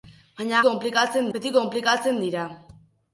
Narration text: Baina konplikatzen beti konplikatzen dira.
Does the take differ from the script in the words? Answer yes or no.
no